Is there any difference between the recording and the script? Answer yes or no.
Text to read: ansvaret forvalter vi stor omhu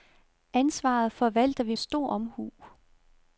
no